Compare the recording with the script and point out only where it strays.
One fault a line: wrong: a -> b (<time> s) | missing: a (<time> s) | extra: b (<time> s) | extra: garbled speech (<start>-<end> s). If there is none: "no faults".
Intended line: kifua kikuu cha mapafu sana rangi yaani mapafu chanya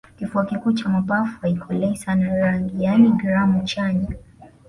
extra: haikolei (1.4 s)
wrong: mapafu -> gramu (3.1 s)